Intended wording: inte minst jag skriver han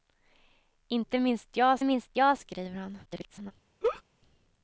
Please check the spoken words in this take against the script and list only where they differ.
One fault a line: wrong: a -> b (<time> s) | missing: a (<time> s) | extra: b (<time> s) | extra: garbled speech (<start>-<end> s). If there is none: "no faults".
extra: minst jag (1.8 s)
extra: garbled speech (3.0-3.5 s)